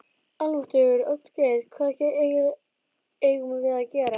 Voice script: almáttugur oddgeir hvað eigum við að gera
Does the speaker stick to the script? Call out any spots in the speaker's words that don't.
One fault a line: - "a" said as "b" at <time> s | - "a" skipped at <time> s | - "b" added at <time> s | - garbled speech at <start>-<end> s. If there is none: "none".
none